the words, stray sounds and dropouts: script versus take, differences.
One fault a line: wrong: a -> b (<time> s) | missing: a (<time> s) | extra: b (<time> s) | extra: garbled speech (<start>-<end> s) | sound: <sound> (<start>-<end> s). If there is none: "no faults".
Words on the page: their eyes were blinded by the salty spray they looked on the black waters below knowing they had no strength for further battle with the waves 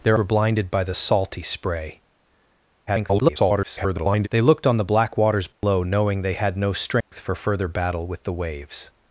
missing: eyes (0.2 s)
extra: garbled speech (2.9-4.3 s)
sound: dropout (5.5-5.6 s)
sound: dropout (7.0-7.1 s)